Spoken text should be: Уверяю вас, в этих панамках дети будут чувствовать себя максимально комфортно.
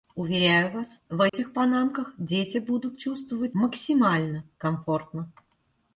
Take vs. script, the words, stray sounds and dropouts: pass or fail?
fail